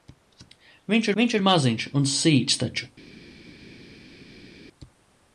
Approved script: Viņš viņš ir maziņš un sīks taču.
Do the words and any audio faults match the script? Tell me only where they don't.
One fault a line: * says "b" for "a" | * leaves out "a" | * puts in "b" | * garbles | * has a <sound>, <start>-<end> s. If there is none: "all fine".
all fine